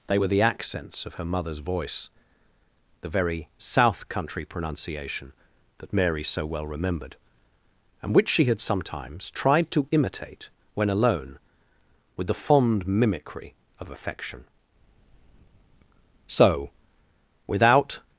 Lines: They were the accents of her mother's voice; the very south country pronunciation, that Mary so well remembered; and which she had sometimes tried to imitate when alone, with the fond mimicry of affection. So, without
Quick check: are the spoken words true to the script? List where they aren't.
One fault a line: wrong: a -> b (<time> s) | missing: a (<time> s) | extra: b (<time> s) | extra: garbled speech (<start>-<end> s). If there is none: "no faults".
no faults